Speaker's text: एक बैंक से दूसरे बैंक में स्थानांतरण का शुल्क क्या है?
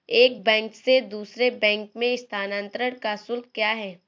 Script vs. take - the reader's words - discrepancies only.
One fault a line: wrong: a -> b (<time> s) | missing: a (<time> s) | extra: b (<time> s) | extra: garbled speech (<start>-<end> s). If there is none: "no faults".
no faults